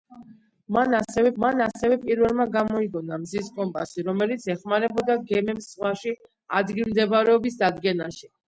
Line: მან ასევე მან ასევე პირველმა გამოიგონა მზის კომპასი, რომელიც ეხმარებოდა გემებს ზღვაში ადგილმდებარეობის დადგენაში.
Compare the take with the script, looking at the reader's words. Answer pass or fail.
pass